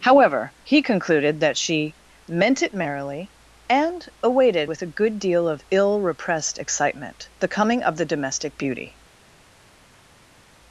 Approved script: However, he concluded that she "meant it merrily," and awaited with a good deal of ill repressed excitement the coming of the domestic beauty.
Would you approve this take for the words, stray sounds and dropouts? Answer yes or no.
yes